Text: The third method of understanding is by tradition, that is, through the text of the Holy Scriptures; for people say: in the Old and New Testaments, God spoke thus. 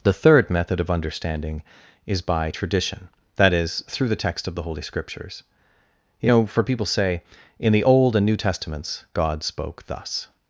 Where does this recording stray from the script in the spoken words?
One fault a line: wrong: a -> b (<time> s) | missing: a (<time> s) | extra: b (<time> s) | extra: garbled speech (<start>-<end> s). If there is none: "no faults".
extra: you know (6.2 s)